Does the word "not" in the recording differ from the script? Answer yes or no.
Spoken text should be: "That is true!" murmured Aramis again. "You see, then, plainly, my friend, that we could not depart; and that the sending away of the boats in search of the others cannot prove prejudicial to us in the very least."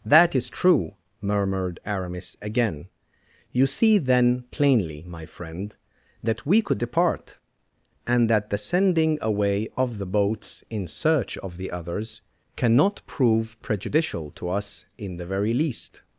yes